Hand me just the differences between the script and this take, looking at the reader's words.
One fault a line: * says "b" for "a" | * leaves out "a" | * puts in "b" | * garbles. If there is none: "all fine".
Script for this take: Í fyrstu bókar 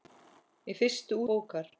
all fine